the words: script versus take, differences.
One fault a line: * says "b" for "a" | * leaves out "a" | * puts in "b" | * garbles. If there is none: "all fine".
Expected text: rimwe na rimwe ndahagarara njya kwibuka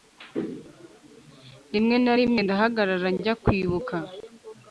all fine